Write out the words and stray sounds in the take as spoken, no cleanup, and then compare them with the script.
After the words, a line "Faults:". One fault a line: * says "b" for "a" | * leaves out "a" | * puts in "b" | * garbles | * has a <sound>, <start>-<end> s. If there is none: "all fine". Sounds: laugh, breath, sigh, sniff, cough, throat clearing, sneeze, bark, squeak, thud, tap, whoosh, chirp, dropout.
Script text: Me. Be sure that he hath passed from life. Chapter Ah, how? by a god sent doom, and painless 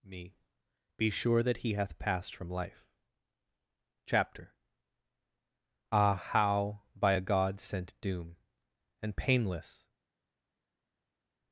Me. Be sure that he hath passed from life. Chapter Ah, how? by a god sent doom, and painless
Faults:
all fine